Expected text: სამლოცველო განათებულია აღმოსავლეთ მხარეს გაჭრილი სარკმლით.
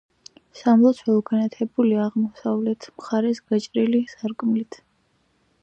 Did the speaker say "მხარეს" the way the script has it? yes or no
yes